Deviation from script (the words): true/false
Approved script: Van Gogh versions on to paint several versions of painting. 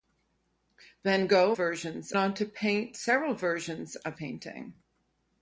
false